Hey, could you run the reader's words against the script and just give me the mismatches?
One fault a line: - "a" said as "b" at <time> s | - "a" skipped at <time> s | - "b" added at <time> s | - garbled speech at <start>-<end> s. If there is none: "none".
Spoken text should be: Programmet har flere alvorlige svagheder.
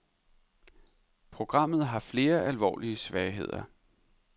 none